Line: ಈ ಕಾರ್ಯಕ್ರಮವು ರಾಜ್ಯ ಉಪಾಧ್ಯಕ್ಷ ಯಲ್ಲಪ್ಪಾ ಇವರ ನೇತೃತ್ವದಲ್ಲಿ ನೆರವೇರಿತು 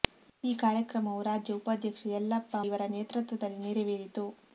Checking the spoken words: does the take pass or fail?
pass